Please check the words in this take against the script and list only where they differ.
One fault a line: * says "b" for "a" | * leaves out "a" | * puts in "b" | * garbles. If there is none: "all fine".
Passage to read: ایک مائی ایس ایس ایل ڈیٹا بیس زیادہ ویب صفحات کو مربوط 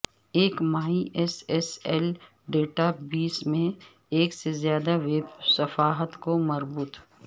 * puts in "میں ایک سے"